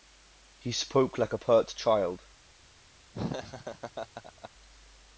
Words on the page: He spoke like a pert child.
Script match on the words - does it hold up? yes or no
yes